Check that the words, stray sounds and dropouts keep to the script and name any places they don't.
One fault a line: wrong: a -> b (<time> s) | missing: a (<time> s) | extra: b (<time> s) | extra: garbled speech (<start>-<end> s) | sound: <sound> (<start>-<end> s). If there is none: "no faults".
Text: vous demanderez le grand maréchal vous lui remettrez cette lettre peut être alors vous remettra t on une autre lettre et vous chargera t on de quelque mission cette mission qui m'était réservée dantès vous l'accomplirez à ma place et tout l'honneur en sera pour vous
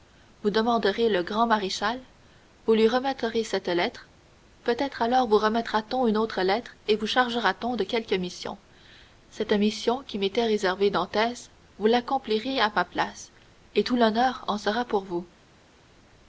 no faults